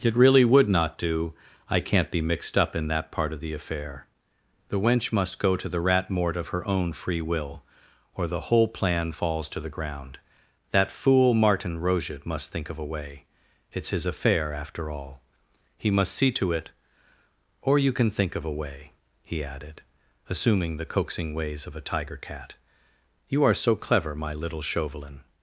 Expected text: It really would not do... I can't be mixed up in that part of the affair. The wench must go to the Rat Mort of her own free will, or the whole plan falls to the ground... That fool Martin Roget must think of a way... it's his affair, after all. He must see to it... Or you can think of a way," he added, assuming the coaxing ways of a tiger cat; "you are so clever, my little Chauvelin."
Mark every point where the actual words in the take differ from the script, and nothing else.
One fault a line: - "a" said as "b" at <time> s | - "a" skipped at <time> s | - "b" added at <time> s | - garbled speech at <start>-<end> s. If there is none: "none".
none